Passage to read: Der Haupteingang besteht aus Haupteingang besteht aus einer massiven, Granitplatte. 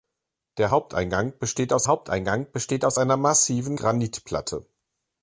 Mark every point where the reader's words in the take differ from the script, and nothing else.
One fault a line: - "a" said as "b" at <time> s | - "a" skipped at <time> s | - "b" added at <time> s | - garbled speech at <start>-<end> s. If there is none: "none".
none